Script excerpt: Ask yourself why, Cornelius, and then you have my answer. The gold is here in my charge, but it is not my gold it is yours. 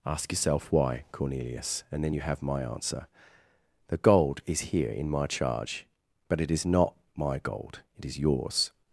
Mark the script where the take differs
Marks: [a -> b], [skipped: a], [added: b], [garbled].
Ask yourself why, Cornelius, and then you have my answer. The gold is here in my charge, but it is not my gold it is yours.